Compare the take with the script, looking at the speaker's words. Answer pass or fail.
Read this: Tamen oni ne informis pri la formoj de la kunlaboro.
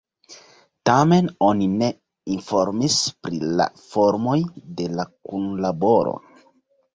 pass